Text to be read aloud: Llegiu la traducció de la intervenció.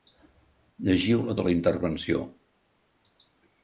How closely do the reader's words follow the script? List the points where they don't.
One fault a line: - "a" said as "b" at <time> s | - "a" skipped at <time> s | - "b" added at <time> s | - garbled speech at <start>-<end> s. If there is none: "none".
- "traducció" skipped at 1.4 s